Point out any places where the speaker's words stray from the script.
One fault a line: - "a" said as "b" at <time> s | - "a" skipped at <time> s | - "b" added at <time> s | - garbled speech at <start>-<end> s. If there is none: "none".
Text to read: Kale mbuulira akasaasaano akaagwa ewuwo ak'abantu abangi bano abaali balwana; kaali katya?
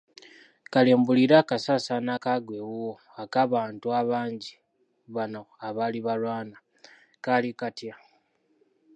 none